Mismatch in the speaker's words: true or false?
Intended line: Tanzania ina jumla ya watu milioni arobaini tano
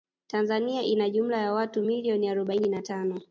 true